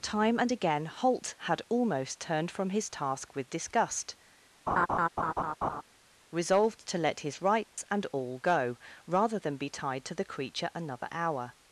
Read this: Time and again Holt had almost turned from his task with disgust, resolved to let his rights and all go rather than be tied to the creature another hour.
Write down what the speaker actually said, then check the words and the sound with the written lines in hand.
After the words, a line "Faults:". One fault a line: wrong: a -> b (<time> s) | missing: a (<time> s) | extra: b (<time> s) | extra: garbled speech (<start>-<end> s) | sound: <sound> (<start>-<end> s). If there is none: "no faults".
Time and again Holt had almost turned from his task with disgust, resolved to let his rights and all go rather than be tied to the creature another hour.
Faults:
sound: laugh (4.7-5.8 s)
sound: dropout (7.6-7.8 s)